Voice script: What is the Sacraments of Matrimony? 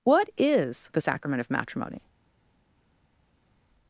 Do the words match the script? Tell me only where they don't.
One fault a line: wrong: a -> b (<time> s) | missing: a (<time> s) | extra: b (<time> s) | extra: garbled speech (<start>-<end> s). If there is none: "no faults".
wrong: Sacraments -> Sacrament (1.0 s)